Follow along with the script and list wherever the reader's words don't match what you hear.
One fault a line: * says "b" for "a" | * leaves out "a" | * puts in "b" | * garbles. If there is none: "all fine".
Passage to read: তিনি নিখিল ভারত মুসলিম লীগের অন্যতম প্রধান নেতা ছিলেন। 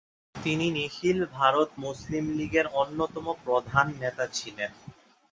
all fine